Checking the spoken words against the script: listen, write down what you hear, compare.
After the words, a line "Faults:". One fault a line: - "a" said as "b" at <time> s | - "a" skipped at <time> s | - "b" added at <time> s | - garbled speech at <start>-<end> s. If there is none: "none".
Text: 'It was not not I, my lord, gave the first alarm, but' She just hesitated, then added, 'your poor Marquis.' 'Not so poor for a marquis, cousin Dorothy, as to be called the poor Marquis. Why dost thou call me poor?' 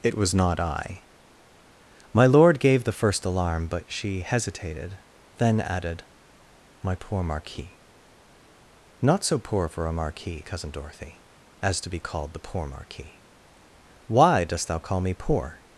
'It was not I, my lord, gave the first alarm, but' She hesitated, then added, 'my poor Marquis.' 'Not so poor for a marquis, cousin Dorothy, as to be called the poor Marquis. Why dost thou call me poor?'
Faults:
- "not" skipped at 0.6 s
- "just" skipped at 4.2 s
- "your" said as "my" at 6.8 s